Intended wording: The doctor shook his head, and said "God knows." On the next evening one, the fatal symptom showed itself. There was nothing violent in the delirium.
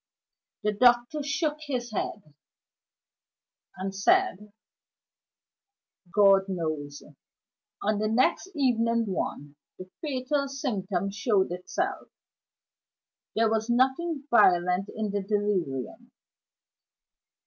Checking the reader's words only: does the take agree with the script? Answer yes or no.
yes